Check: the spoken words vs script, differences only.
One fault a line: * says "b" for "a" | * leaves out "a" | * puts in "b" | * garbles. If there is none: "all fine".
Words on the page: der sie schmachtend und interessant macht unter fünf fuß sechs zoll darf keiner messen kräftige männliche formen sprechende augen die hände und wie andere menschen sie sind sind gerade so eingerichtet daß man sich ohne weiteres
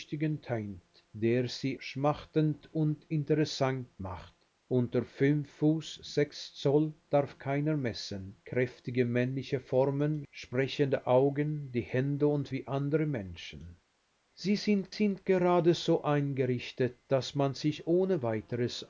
all fine